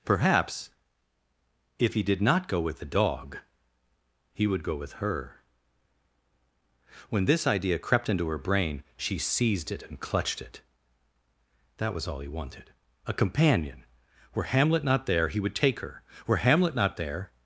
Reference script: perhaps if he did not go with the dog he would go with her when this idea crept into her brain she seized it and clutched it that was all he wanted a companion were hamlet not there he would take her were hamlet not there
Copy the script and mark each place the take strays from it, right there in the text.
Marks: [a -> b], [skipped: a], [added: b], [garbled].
perhaps if he did not go with the dog he would go with her when this idea crept into her brain she seized it and clutched it that was all he wanted a companion were hamlet not there he would take her were hamlet not there